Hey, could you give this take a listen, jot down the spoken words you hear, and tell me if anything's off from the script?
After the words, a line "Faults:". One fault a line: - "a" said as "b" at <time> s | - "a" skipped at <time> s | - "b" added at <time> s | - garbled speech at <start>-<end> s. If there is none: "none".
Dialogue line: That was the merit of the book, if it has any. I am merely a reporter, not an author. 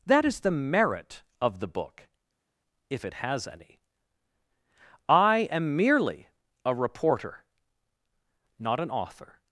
That is the merit of the book, if it has any. I am merely a reporter, not an author.
Faults:
- "was" said as "is" at 0.2 s